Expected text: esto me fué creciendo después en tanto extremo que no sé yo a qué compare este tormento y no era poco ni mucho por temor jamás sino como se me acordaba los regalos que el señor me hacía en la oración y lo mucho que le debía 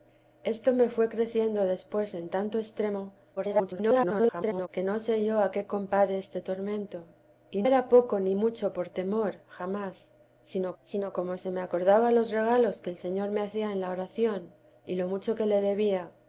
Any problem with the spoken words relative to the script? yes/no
yes